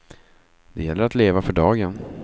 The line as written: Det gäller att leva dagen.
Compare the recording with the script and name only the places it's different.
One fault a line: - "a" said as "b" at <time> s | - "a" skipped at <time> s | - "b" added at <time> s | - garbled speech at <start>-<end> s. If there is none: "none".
- "för" added at 1.4 s